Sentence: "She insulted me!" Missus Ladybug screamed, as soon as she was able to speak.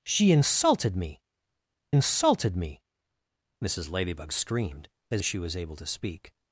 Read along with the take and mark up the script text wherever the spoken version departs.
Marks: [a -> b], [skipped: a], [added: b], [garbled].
"She insulted me!" [added: insulted me] Missus Ladybug screamed, as [skipped: soon] as she was able to speak.